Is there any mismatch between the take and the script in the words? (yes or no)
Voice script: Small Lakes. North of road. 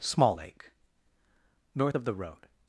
yes